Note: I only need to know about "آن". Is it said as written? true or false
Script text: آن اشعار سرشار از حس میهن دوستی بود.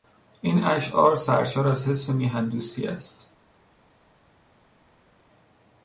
false